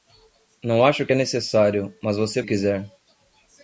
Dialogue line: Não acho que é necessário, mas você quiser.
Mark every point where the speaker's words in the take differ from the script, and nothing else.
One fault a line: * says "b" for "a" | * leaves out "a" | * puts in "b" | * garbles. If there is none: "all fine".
all fine